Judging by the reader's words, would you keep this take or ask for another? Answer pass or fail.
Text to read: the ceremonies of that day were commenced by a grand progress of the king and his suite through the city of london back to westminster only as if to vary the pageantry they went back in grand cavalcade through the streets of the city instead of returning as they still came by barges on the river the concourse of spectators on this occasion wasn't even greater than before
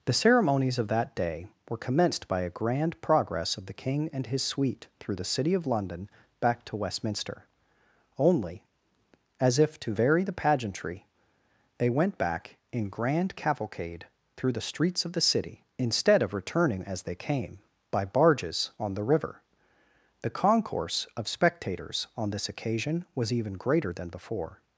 fail